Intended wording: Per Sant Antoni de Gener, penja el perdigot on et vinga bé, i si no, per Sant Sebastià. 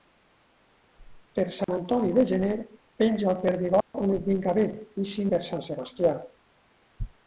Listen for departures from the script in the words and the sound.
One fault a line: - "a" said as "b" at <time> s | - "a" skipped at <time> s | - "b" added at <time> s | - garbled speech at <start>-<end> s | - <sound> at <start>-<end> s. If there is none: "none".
- dropout at 1.6-1.7 s
- dropout at 3.8-3.9 s
- "no" skipped at 5.3 s